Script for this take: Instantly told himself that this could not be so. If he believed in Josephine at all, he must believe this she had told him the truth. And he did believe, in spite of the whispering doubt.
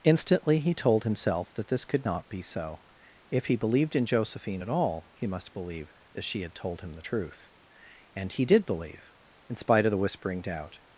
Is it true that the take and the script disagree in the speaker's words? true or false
true